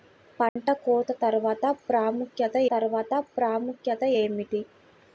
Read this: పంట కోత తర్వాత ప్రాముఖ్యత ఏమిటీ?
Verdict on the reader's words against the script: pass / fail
fail